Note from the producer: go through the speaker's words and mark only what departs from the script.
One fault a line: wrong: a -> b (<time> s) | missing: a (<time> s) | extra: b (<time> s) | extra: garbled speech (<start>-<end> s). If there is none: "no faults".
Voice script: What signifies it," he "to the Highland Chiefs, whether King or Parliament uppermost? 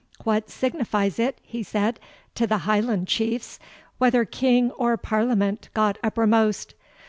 extra: said (1.6 s)
extra: got (5.7 s)